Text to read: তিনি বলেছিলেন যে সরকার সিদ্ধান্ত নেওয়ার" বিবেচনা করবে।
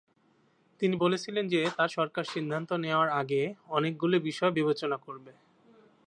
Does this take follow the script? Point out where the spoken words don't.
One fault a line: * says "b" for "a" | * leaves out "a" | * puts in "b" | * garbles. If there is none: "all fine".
* puts in "তার"
* puts in "আগে অনেকগুলি বিষয়"